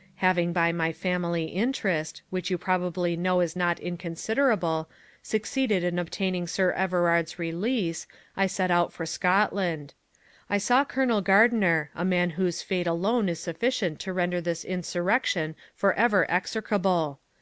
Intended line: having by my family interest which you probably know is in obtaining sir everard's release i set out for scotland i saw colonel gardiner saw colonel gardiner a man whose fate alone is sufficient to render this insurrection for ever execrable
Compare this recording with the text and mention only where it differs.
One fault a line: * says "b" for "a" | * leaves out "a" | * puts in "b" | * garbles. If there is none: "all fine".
* puts in "not inconsiderable succeeded"
* leaves out "saw colonel gardiner"